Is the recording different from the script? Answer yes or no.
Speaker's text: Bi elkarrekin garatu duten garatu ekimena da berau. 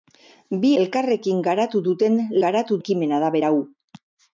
no